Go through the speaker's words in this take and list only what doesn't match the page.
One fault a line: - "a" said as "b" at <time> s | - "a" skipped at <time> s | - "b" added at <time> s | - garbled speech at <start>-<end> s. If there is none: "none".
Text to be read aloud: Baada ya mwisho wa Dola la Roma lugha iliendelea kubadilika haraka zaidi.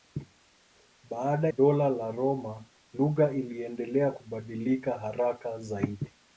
- "ya mwisho wa" skipped at 1.5 s